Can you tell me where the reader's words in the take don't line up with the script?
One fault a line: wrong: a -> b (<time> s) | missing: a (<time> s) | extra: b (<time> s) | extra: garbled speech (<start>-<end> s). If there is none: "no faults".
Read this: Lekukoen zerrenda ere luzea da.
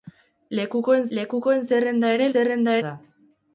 extra: lekukoen (1.2 s)
wrong: luzea -> zerrenda (2.3 s)